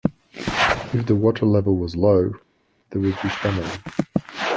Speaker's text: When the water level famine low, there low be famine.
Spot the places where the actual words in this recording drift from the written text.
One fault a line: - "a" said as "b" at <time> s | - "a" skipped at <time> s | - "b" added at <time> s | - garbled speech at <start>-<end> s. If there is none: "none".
- "When" said as "If" at 0.9 s
- "famine" said as "was" at 1.8 s
- "low" said as "would" at 3.0 s